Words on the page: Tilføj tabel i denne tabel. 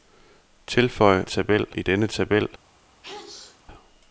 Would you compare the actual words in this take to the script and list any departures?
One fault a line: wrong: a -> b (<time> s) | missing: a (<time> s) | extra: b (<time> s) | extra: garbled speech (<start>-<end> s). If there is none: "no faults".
no faults